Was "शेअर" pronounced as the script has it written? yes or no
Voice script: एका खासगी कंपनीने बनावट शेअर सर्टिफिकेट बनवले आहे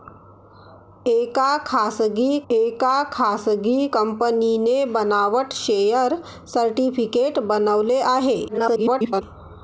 yes